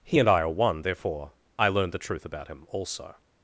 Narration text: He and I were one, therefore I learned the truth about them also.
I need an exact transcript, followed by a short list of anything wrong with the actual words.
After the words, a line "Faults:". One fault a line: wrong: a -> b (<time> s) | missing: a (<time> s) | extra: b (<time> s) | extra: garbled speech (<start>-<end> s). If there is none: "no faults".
He and I are one, therefore I learned the truth about him also.
Faults:
wrong: were -> are (0.4 s)
wrong: them -> him (2.5 s)